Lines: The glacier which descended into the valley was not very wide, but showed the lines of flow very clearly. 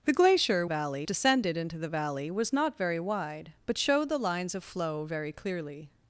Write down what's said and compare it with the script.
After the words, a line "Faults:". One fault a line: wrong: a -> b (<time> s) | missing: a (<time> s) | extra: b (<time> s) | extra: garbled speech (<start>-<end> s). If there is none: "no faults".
The glacier valley descended into the valley was not very wide, but showed the lines of flow very clearly.
Faults:
wrong: which -> valley (0.6 s)